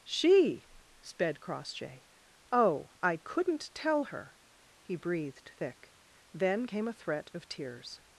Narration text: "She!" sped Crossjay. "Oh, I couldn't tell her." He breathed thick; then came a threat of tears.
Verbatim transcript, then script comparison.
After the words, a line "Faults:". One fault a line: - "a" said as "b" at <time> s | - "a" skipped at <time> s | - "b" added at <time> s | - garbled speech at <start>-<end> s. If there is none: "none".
"She!" sped Crossjay. "Oh, I couldn't tell her." He breathed thick; then came a threat of tears.
Faults:
none